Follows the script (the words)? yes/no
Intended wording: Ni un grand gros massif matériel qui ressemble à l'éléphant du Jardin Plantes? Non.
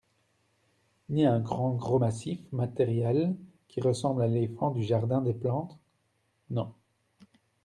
no